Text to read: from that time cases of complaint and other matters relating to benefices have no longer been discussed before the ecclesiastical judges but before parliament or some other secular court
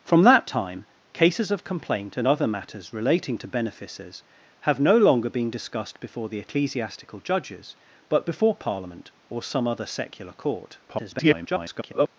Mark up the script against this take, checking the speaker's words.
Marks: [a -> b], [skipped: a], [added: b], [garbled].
from that time cases of complaint and other matters relating to benefices have no longer been discussed before the ecclesiastical judges but before parliament or some other secular court [garbled]